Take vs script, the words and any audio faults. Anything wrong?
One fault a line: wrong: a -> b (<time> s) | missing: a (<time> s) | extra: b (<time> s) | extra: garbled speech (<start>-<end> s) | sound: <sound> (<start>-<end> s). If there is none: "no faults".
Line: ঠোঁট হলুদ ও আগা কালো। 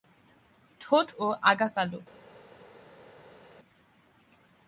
missing: হলুদ (1.1 s)